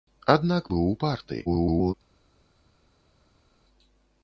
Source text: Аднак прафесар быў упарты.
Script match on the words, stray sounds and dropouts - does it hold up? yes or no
no